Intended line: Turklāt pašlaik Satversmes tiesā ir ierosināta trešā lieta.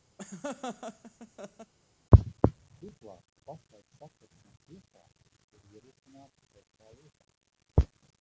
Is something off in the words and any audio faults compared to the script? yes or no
yes